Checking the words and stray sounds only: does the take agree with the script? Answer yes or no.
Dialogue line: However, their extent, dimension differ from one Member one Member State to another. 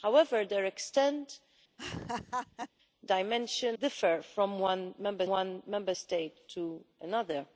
no